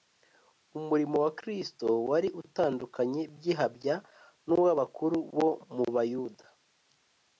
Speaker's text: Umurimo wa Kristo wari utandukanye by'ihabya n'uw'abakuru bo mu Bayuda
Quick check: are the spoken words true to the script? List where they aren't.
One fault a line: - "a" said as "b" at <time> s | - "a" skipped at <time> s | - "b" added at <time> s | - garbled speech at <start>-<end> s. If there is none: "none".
none